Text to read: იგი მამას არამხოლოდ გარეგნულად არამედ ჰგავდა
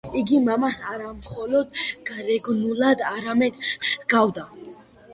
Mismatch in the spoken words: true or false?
false